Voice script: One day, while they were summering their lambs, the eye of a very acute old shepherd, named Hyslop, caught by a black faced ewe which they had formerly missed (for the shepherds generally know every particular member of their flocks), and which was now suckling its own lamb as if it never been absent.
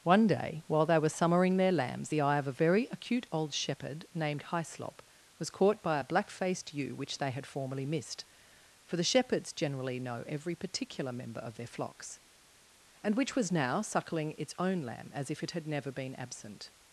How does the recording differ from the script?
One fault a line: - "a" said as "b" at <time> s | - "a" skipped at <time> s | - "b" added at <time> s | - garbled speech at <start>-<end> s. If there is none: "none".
- "was" added at 5.4 s
- "had" added at 15.5 s